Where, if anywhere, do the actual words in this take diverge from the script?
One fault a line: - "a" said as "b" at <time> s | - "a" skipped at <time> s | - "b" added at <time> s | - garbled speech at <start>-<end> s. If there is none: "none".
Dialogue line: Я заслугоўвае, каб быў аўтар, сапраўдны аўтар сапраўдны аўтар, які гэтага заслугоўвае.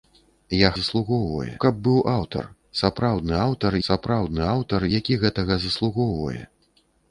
none